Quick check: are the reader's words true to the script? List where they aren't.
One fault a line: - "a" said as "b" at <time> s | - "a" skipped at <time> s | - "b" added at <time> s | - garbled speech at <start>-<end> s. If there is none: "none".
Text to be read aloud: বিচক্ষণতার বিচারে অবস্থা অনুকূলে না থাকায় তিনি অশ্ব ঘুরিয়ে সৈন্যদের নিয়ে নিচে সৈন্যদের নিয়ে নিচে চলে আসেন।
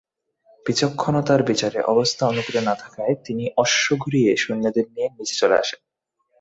- "সৈন্যদের নিয়ে নিচে" skipped at 5.3 s